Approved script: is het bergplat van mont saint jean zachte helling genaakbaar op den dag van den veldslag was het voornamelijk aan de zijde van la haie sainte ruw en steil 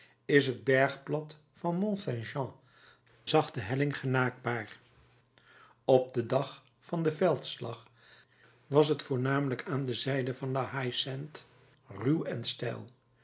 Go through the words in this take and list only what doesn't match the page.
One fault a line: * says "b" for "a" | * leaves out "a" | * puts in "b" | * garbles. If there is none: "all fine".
all fine